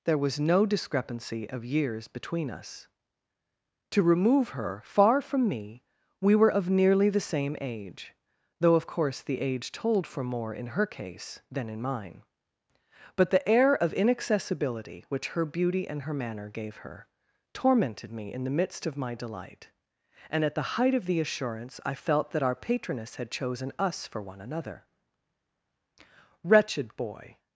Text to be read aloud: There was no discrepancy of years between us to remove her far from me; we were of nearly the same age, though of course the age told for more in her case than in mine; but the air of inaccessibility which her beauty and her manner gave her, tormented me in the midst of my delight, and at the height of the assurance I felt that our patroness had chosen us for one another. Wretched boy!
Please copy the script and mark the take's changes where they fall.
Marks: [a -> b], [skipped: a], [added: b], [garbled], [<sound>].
There was no discrepancy of years between us to remove her far from me; we were of nearly the same age, though of course the age told for more in her case than in mine; but the air of inaccessibility which her beauty and her manner gave her, tormented me in the midst of my delight, and at the height of the assurance I felt that our patroness had chosen us for one another. Wretched boy!